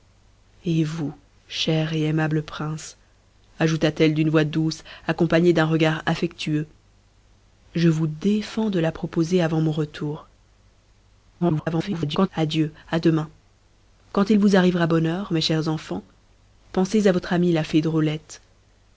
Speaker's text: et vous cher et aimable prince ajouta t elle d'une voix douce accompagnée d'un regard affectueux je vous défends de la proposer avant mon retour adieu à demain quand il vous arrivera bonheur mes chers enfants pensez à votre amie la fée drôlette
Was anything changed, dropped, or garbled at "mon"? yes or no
no